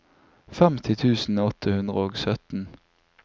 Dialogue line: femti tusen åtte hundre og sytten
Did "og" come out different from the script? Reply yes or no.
no